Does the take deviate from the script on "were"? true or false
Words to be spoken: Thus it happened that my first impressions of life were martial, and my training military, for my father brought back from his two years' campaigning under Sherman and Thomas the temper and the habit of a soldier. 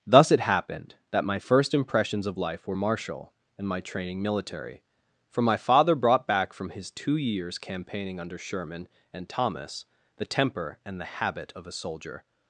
false